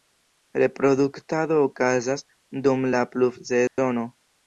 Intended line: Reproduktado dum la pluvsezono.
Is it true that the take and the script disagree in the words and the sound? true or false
true